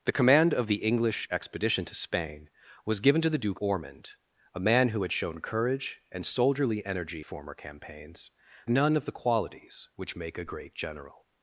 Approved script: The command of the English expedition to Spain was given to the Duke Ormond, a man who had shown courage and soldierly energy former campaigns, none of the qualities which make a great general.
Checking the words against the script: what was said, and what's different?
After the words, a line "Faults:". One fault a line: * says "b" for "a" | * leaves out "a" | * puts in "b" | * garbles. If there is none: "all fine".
The command of the English expedition to Spain was given to the Duke Ormond, a man who had shown courage and soldierly energy former campaigns, none of the qualities which make a great general.
Faults:
all fine